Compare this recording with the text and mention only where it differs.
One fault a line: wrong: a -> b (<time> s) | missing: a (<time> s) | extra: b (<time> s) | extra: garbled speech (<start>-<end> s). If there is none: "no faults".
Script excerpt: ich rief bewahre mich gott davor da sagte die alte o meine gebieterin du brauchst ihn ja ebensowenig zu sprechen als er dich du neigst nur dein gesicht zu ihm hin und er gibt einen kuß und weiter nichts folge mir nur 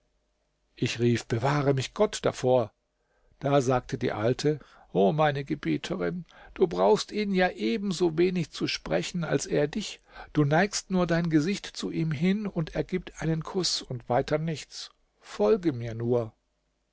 no faults